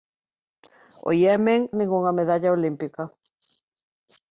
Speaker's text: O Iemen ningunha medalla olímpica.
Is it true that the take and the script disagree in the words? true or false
false